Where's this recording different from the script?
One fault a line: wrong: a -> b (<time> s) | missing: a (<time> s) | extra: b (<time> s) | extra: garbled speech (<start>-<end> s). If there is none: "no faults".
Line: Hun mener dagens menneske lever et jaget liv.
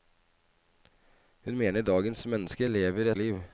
missing: et jaget (3.1 s)